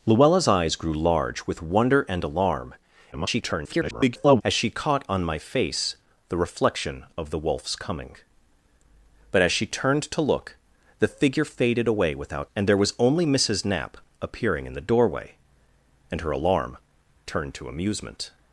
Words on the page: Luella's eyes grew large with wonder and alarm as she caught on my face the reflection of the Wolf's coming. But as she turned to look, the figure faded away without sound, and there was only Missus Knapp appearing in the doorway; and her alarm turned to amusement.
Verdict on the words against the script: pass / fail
fail